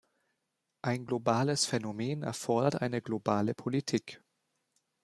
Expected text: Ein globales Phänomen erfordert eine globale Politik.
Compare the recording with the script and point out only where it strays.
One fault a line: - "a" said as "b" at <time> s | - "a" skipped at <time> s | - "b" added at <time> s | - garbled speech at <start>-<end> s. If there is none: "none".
none